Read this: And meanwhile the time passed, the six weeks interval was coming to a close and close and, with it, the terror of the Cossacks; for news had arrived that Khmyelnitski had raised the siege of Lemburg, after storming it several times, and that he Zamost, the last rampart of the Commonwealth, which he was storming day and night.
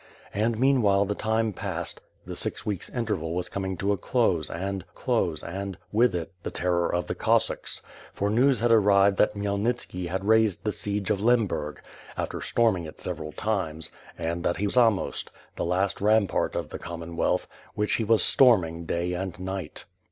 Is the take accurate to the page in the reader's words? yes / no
yes